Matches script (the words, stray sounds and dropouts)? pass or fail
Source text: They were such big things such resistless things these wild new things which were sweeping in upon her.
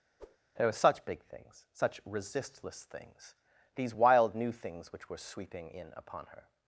fail